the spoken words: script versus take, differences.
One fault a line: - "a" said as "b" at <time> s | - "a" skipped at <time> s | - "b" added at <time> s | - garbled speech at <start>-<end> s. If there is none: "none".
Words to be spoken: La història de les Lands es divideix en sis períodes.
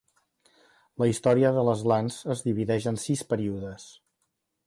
none